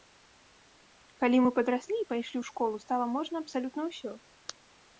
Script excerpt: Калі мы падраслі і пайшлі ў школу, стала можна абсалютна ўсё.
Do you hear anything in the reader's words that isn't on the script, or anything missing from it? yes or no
no